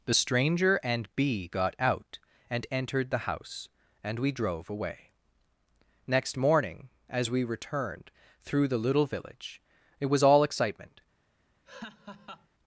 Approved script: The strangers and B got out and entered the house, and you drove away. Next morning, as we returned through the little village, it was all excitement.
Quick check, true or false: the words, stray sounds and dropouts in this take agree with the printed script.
false